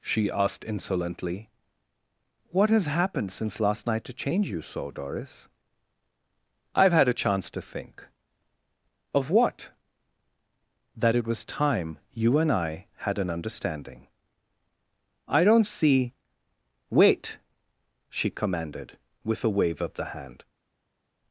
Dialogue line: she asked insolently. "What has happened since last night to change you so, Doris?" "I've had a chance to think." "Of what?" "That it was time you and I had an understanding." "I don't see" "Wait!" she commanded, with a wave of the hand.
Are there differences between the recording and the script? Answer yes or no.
no